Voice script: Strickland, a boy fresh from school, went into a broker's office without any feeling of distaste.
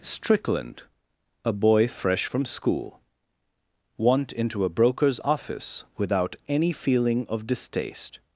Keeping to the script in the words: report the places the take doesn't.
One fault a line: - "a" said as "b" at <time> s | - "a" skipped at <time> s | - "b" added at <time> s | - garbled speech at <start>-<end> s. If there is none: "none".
- "went" said as "want" at 4.0 s